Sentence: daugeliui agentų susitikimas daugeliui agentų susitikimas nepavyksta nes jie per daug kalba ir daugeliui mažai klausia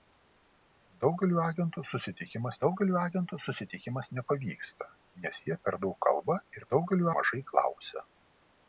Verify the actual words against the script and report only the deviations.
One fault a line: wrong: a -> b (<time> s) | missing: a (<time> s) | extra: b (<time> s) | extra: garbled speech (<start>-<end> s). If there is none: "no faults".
no faults